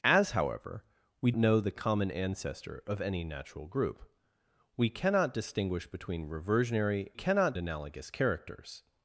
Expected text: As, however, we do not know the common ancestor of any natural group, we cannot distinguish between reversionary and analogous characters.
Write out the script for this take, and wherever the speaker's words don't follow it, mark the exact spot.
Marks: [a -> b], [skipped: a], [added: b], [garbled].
As, however, we [skipped: do not] know the common ancestor of any natural group, we cannot distinguish between reversionary [and -> cannot] analogous characters.